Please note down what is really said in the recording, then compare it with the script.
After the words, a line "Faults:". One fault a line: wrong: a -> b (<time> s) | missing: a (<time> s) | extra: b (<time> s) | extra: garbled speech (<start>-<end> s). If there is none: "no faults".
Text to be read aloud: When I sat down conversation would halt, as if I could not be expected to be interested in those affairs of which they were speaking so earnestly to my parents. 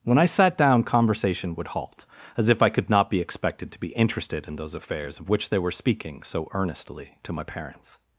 When I sat down conversation would halt, as if I could not be expected to be interested in those affairs of which they were speaking so earnestly to my parents.
Faults:
no faults